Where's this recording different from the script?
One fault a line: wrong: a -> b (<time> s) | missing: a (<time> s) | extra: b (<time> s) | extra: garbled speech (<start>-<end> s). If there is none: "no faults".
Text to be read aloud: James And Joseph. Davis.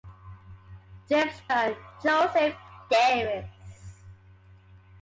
no faults